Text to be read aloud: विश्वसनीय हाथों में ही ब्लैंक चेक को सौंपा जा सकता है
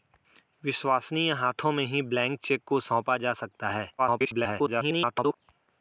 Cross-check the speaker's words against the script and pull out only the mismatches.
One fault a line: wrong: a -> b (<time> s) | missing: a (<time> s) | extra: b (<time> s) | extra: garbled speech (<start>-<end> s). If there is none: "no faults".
extra: garbled speech (4.0-5.4 s)